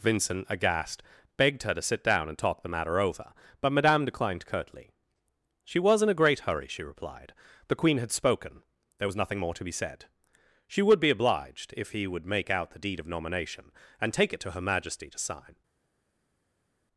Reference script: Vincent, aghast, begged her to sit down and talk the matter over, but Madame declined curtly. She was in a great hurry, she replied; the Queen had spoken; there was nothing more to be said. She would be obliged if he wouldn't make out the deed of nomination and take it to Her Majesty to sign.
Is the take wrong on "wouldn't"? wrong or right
wrong